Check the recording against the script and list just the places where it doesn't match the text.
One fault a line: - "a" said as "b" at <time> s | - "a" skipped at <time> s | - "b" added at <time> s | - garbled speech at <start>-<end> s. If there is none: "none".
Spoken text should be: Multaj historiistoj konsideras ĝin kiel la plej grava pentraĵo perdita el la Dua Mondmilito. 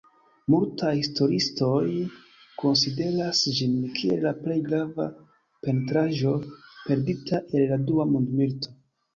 none